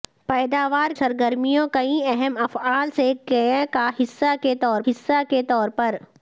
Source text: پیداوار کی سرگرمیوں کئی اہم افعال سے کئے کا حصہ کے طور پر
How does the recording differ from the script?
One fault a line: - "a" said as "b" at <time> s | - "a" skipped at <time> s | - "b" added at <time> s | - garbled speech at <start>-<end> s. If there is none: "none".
- "کی" skipped at 0.9 s
- "حصہ کے طور" added at 4.9 s